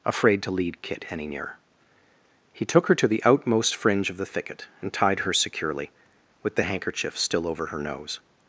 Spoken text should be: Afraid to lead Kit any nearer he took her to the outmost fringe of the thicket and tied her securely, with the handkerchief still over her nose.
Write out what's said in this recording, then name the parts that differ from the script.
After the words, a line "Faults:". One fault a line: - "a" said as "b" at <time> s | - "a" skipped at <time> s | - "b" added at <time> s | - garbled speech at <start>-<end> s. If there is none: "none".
Afraid to lead Kit any nearer he took her to the outmost fringe of the thicket and tied her securely, with the handkerchief still over her nose.
Faults:
none